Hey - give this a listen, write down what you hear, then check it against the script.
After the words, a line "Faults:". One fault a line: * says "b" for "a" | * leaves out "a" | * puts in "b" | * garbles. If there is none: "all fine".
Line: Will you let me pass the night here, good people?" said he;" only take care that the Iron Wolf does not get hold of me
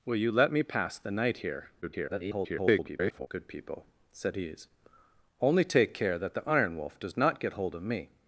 Will you let me pass the night here, [garbled] good people?" said he;" only take care that the Iron Wolf does not get hold of me
Faults:
* garbles